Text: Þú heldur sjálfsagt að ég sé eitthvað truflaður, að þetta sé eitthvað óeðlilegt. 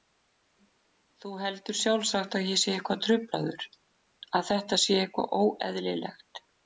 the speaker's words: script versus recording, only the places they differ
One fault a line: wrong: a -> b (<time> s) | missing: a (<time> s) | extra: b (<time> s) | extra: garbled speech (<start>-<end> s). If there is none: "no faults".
no faults